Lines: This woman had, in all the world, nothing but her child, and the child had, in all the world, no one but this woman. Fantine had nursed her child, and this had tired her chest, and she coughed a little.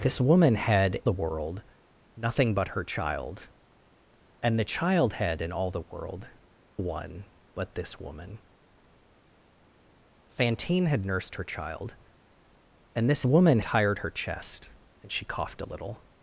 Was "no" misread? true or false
true